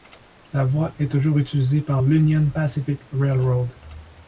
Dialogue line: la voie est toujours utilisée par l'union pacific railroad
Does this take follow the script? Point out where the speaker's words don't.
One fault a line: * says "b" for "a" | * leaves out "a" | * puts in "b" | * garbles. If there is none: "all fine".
all fine